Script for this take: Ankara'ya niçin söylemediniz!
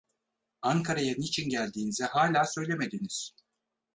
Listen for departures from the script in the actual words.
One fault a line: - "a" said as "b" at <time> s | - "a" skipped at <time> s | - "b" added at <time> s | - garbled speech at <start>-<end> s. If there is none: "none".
- "geldiğinizi hâlâ" added at 1.5 s